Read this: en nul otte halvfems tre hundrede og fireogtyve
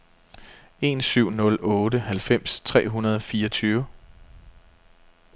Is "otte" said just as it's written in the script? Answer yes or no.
yes